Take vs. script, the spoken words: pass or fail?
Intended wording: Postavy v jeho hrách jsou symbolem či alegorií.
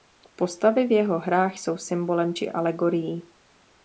pass